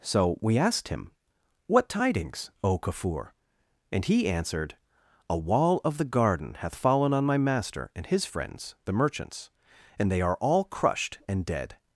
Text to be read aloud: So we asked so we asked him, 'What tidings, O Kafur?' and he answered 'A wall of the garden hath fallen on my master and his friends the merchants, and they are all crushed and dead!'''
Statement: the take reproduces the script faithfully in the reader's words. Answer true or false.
false